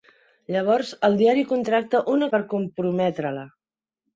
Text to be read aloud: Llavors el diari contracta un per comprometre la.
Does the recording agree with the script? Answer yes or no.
yes